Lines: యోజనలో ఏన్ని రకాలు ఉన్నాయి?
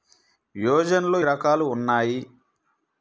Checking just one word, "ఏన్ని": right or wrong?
wrong